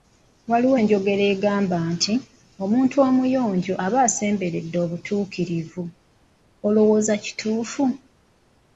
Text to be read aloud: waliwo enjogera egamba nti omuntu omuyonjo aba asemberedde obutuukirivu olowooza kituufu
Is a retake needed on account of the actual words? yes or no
no